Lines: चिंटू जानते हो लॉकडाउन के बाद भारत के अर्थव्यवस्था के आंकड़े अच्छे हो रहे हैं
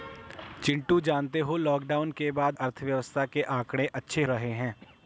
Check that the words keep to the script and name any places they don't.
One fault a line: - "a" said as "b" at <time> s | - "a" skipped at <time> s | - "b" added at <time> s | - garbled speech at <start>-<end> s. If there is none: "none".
- "भारत के" skipped at 2.6 s
- "हो" skipped at 4.2 s